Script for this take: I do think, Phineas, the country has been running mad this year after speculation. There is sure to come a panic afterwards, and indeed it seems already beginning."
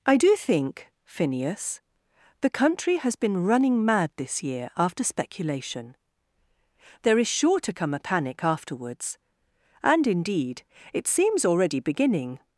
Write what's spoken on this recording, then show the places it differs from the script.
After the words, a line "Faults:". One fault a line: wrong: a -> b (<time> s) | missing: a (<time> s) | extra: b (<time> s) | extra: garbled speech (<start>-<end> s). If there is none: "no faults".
I do think, Phineas, the country has been running mad this year after speculation. There is sure to come a panic afterwards, and indeed it seems already beginning."
Faults:
no faults